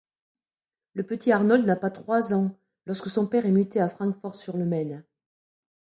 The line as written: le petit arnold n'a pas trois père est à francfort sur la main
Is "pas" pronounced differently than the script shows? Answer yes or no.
no